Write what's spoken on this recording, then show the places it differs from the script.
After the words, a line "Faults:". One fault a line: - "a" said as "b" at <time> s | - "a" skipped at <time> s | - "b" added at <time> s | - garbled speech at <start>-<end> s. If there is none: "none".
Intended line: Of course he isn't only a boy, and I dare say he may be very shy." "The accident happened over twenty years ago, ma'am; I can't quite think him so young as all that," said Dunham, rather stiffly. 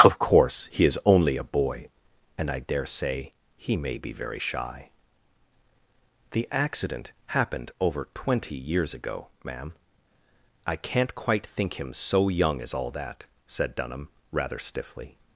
Of course he is only a boy, and I dare say he may be very shy." "The accident happened over twenty years ago, ma'am; I can't quite think him so young as all that," said Dunham, rather stiffly.
Faults:
- "isn't" said as "is" at 0.8 s